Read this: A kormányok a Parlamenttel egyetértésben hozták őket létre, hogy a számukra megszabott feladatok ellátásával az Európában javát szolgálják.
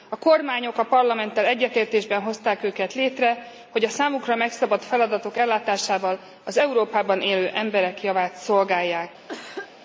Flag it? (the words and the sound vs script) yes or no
yes